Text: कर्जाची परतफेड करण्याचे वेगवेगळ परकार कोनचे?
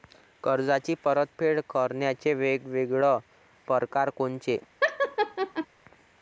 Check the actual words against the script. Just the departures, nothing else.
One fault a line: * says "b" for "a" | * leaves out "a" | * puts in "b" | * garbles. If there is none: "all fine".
all fine